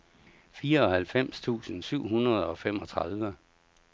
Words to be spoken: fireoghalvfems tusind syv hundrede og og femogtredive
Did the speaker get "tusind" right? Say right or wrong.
right